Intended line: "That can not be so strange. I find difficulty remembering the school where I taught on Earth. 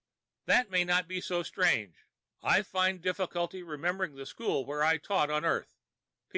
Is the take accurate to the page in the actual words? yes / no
no